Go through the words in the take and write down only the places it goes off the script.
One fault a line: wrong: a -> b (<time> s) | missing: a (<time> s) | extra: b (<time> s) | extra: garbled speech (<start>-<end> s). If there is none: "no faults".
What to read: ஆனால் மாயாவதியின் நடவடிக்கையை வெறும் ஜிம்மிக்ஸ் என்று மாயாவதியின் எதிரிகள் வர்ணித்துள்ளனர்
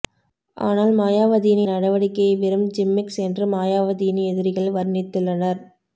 no faults